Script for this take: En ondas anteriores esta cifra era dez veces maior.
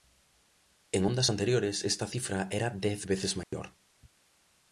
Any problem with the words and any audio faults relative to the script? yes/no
yes